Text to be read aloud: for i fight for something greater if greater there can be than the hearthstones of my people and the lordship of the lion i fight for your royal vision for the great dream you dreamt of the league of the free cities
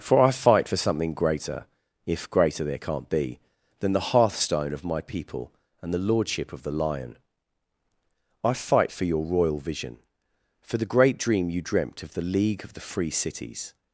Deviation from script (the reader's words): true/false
true